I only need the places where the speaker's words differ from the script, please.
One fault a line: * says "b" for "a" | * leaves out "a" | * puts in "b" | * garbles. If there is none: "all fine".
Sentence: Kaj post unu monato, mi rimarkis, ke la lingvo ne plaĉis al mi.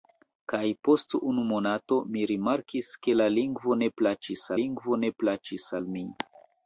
* puts in "lingvo ne plaĉis"